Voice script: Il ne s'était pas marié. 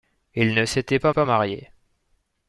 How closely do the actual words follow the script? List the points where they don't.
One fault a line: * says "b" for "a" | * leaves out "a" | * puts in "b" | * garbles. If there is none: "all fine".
* puts in "pas"